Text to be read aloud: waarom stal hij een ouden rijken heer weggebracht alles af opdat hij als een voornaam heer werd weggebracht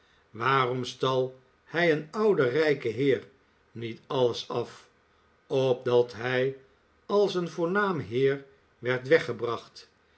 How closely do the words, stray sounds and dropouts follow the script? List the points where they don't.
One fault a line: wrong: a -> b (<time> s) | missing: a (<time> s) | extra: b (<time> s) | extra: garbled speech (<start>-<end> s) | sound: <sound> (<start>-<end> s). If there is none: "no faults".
wrong: weggebracht -> niet (3.7 s)